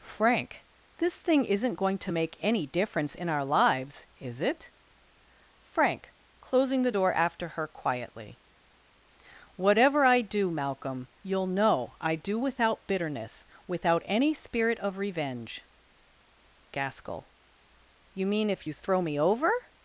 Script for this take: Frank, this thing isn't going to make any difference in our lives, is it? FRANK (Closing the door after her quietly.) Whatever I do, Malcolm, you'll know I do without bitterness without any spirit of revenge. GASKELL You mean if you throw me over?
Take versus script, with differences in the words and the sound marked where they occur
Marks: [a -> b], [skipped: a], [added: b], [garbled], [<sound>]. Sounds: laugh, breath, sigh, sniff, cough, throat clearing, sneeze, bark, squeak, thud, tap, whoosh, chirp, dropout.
Frank, this thing isn't going to make any difference in our lives, is it? FRANK (Closing the door after her quietly.) Whatever I do, Malcolm, you'll know I do without bitterness without any spirit of revenge. GASKELL You mean if you throw me over?